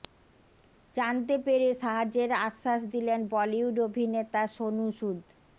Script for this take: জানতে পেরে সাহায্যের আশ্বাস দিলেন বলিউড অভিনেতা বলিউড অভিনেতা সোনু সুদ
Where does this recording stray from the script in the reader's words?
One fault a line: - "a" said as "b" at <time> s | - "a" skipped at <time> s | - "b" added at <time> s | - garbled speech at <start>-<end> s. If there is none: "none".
- "বলিউড অভিনেতা" skipped at 4.4 s